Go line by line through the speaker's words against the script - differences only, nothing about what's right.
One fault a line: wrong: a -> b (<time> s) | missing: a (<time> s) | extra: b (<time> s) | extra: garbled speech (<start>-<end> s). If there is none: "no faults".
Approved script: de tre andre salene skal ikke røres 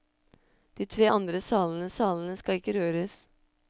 extra: salene (1.9 s)